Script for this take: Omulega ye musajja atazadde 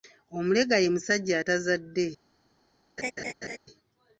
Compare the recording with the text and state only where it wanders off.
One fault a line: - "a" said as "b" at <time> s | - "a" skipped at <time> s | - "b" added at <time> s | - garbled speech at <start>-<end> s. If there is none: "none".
none